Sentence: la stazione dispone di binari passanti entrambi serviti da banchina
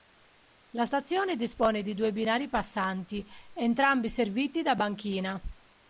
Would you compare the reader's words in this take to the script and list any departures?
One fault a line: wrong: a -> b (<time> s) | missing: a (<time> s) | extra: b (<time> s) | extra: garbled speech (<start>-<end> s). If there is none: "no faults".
extra: due (1.9 s)